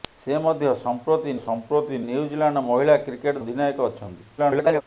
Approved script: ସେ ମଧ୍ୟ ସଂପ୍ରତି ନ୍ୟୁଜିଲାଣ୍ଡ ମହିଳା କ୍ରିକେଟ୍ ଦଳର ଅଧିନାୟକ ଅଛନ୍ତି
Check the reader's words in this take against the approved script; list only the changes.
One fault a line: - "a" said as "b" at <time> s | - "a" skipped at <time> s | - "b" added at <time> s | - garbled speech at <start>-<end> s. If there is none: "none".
- "ସଂପ୍ରତି" added at 1.4 s
- "ଦଳର" skipped at 3.4 s
- garbled speech at 4.4-4.8 s